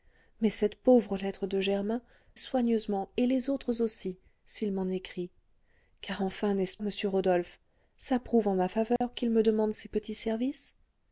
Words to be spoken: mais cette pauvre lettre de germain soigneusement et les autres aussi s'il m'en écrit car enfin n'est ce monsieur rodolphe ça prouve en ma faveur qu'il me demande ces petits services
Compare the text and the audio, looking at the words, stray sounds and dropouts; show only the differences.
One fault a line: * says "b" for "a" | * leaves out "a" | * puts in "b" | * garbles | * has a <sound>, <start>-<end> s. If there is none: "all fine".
* has a dropout, 9.0-9.0 s